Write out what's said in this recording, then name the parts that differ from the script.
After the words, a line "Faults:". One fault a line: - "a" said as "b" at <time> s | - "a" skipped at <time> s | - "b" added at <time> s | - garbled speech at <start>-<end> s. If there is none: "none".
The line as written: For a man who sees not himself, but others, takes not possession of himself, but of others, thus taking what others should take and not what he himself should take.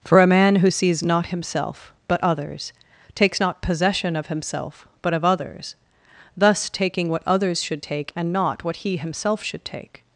For a man who sees not himself, but others, takes not possession of himself, but of others, thus taking what others should take and not what he himself should take.
Faults:
none